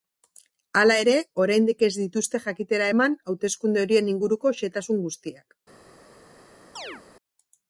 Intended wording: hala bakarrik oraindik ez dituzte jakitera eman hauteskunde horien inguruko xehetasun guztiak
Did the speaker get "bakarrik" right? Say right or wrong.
wrong